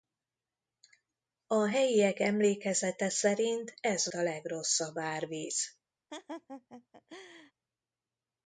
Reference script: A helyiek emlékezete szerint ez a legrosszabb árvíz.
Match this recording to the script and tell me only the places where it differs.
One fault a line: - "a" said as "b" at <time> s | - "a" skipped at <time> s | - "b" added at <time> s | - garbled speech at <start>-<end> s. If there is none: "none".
none